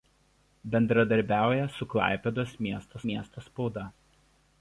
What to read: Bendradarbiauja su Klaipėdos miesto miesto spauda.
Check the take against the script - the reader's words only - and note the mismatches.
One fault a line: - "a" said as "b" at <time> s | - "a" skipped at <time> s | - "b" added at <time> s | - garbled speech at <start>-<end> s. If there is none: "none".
none